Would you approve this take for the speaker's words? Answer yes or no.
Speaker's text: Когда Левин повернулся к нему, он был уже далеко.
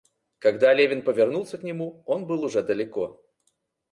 yes